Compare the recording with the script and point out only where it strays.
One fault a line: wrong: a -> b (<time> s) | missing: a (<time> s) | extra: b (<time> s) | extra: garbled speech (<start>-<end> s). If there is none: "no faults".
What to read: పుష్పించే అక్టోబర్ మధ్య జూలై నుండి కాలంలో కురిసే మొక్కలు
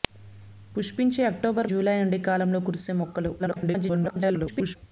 missing: మధ్య (1.7 s)
extra: garbled speech (3.4-4.8 s)